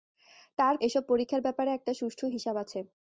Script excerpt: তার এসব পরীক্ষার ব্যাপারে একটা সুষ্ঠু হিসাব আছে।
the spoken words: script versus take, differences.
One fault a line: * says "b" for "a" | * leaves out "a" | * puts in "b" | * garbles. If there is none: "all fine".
all fine